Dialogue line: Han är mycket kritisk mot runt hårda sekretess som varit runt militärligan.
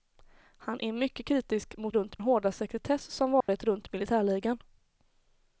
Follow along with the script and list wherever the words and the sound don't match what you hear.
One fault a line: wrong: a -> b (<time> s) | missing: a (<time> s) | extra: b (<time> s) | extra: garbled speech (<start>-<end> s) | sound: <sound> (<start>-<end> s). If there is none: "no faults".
sound: dropout (3.4-3.5 s)